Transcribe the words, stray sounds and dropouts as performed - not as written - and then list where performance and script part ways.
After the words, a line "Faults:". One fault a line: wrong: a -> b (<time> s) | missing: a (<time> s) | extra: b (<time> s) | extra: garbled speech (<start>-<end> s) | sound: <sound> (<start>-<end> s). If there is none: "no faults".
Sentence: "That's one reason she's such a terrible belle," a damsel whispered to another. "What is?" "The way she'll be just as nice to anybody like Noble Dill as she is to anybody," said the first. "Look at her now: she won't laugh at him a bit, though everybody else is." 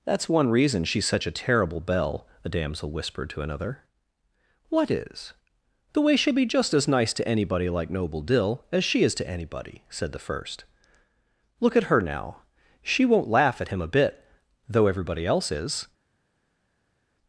"That's one reason she's such a terrible belle," a damsel whispered to another. "What is?" "The way she'll be just as nice to anybody like Noble Dill as she is to anybody," said the first. "Look at her now: she won't laugh at him a bit, though everybody else is."
Faults:
no faults